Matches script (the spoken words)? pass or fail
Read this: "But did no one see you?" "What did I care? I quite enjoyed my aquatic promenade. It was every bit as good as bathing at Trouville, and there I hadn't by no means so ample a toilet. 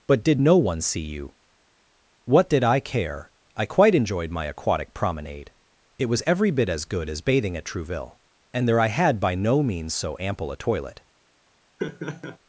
fail